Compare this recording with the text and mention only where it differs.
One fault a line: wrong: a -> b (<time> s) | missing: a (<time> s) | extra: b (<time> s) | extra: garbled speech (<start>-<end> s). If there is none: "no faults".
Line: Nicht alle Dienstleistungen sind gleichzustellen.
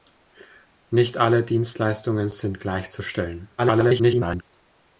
extra: garbled speech (3.6-4.4 s)